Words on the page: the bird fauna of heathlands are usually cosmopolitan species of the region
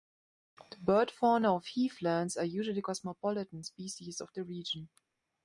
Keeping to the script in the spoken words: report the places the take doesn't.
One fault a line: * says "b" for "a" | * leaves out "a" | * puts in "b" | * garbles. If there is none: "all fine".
all fine